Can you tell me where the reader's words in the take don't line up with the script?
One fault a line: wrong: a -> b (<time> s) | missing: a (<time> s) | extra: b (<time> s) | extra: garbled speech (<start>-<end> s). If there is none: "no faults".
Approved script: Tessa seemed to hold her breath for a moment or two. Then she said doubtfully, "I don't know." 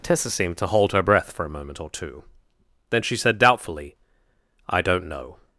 no faults